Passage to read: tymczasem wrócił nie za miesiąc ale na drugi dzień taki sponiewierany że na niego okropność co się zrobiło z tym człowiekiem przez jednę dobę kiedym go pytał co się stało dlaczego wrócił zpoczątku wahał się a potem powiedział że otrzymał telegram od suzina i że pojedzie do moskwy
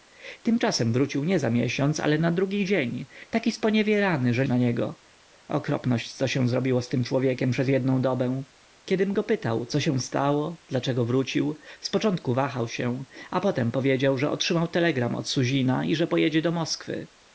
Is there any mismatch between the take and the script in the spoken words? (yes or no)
no